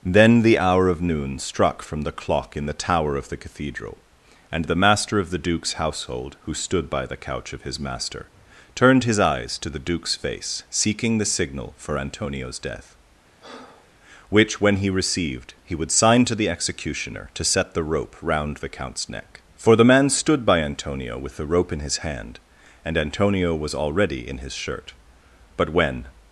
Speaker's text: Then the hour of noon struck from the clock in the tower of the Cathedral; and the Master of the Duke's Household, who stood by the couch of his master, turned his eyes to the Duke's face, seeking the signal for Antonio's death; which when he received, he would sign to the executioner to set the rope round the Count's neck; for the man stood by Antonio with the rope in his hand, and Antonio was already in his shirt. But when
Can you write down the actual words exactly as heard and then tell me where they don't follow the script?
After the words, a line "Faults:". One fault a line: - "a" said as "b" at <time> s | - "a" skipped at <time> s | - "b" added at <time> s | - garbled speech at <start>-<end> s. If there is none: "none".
Then the hour of noon struck from the clock in the tower of the Cathedral; and the Master of the Duke's Household, who stood by the couch of his master, turned his eyes to the Duke's face, seeking the signal for Antonio's death; which when he received, he would sign to the executioner to set the rope round the Count's neck; for the man stood by Antonio with the rope in his hand, and Antonio was already in his shirt. But when
Faults:
none